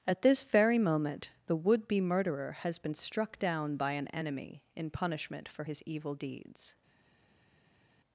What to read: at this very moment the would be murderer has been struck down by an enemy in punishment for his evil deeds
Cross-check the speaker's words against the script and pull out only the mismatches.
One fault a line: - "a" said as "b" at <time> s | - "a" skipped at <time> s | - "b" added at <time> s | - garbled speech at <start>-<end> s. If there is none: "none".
none